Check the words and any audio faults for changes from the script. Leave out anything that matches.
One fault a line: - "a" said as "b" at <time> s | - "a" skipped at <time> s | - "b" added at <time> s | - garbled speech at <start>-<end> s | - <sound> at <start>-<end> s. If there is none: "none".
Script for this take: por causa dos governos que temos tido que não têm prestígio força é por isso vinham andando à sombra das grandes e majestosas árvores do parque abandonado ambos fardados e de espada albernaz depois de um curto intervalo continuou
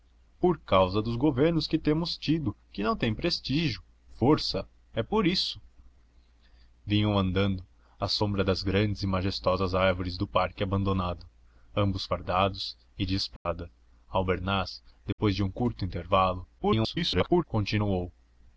- dropout at 13.4-13.5 s
- dropout at 15.1-15.2 s
- garbled speech at 16.6-17.4 s